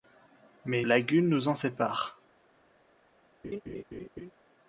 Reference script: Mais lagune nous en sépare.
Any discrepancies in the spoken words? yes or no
no